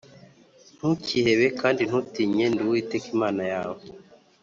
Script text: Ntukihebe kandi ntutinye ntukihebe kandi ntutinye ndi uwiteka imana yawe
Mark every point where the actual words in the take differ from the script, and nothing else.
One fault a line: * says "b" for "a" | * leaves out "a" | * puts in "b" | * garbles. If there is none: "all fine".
* leaves out "ntukihebe kandi ntutinye"